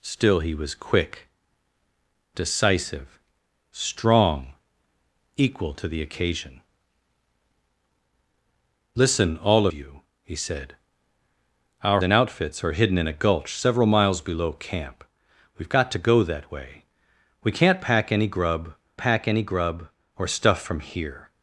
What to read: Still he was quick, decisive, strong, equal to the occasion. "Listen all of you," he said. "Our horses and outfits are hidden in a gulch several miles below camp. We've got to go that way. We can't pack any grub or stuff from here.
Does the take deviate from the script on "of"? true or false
true